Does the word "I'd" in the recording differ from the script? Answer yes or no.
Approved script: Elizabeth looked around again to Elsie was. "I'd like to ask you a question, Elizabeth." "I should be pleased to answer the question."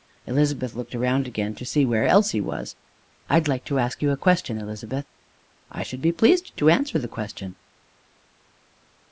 no